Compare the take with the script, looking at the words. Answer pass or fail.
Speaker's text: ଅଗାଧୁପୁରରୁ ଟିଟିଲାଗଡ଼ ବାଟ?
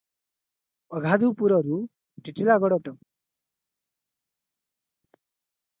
pass